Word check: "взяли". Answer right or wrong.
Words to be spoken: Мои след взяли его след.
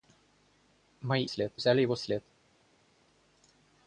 right